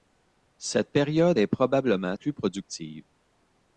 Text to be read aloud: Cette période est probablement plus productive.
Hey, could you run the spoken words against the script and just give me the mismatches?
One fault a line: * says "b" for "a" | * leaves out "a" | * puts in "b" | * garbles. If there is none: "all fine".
all fine